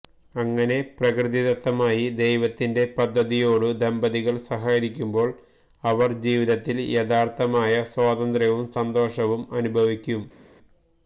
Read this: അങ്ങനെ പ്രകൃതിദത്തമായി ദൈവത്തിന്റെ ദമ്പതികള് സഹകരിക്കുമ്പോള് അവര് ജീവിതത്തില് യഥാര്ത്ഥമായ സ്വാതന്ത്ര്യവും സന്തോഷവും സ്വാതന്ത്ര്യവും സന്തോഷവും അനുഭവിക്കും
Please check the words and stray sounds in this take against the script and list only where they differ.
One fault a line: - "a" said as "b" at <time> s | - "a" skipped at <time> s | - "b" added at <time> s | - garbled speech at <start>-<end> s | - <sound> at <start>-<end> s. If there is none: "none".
- "പദ്ധതിയോടു" added at 3.0 s
- "സ്വാതന്ത്ര്യവും സന്തോഷവും" skipped at 9.4 s